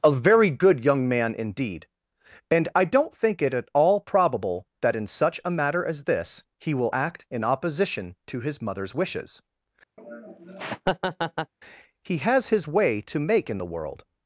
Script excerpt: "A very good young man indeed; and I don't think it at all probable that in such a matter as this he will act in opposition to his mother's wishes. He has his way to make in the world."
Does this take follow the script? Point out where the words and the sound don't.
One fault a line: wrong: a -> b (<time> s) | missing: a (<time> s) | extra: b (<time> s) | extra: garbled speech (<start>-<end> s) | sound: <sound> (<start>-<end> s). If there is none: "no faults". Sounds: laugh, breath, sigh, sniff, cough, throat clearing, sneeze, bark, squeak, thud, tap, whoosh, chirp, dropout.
sound: laugh (10.0-11.5 s)